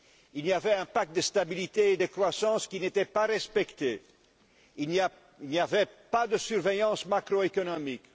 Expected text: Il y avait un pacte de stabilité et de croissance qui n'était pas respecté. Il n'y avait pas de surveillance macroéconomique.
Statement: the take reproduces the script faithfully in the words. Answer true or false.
true